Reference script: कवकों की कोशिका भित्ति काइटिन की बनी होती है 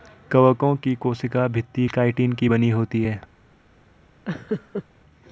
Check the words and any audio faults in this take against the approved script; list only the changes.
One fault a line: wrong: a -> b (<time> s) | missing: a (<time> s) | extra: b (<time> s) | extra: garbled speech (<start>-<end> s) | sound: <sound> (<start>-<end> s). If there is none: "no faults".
sound: laugh (4.3-4.8 s)